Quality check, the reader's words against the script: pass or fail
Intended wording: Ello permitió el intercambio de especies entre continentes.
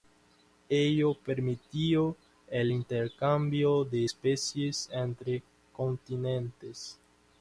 pass